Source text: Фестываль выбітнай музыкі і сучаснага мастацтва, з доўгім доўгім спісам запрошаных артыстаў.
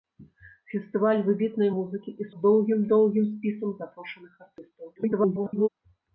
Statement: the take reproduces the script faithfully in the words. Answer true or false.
false